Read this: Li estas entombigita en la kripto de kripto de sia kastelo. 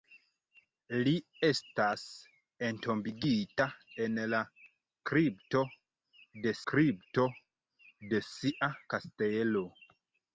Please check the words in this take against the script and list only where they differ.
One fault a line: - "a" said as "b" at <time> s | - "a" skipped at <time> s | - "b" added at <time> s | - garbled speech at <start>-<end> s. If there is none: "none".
none